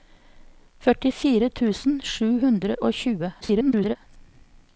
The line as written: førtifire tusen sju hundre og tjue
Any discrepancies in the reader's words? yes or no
yes